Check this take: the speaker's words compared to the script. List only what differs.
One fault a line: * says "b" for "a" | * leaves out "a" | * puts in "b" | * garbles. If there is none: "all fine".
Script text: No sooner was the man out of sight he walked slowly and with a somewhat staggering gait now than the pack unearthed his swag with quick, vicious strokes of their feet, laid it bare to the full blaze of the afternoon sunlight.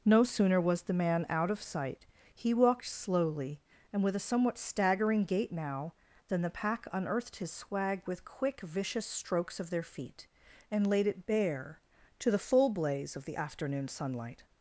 * puts in "and"